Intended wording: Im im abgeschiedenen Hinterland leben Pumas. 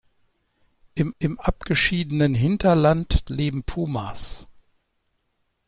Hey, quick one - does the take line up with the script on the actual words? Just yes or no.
yes